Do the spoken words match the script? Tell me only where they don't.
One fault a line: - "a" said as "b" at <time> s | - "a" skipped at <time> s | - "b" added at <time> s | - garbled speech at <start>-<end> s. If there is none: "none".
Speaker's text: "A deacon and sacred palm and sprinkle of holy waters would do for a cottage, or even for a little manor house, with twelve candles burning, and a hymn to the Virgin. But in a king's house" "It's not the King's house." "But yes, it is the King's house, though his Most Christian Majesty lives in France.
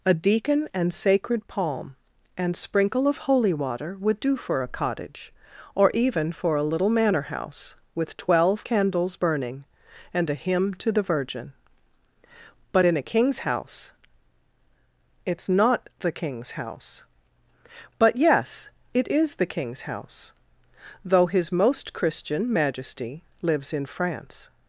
- "waters" said as "water" at 3.5 s